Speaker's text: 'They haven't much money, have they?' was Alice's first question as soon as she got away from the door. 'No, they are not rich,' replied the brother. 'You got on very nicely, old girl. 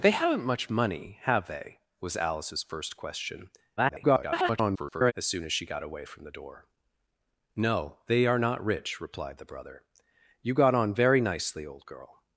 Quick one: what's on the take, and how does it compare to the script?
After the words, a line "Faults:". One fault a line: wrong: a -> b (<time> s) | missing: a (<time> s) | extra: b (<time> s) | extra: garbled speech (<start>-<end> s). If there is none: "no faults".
'They haven't much money, have they?' was Alice's first question [garbled] as soon as she got away from the door. 'No, they are not rich,' replied the brother. 'You got on very nicely, old girl.
Faults:
extra: garbled speech (3.8-5.1 s)